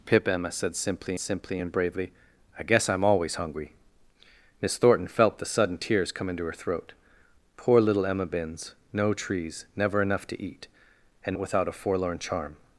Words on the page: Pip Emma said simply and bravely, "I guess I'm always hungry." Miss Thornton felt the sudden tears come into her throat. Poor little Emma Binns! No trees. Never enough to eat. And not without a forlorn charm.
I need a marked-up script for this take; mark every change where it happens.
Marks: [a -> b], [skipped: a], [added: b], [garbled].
Pip Emma said simply [added: simply] and bravely, "I guess I'm always hungry." Miss Thornton felt the sudden tears come into her throat. Poor little Emma Binns! No trees. Never enough to eat. And [skipped: not] without a forlorn charm.